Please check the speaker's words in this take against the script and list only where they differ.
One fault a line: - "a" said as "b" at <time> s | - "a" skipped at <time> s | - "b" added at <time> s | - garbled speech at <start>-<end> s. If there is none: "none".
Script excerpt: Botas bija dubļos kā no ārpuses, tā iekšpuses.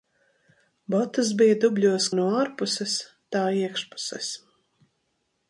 - "kā" skipped at 2.1 s